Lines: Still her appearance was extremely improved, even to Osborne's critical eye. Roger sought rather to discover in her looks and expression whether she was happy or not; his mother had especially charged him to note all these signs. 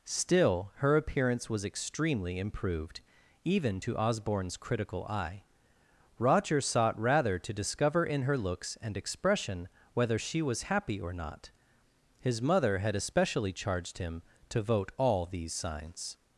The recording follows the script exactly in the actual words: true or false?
false